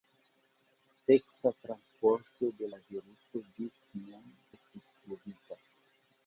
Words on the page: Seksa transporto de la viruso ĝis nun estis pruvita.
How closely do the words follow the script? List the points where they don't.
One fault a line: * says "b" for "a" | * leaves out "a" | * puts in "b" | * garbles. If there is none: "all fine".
all fine